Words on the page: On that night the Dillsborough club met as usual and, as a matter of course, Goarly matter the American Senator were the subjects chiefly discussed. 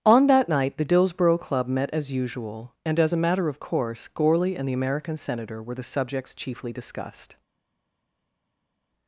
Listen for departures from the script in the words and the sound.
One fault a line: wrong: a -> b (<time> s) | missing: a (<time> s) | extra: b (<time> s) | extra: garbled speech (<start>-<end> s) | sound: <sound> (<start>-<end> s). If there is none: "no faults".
wrong: matter -> and (4.6 s)